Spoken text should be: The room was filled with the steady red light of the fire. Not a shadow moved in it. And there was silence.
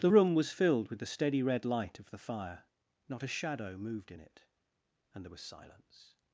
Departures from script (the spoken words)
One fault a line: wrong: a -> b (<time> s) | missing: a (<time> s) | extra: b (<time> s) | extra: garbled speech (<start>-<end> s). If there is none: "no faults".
no faults